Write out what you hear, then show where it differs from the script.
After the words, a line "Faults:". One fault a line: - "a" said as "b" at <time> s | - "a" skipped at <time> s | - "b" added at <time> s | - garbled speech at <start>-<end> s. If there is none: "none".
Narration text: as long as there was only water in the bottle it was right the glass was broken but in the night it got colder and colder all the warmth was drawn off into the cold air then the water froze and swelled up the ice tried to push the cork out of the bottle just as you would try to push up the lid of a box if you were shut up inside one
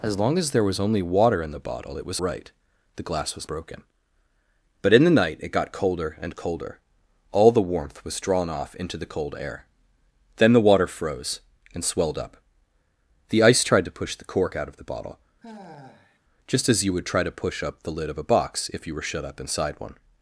as long as there was only water in the bottle it was right the glass was broken but in the night it got colder and colder all the warmth was drawn off into the cold air then the water froze and swelled up the ice tried to push the cork out of the bottle just as you would try to push up the lid of a box if you were shut up inside one
Faults:
none